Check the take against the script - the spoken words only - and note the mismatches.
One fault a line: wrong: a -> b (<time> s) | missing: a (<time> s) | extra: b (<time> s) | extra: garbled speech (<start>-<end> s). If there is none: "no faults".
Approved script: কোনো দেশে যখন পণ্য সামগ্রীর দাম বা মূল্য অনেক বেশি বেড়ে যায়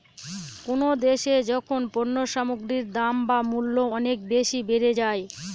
no faults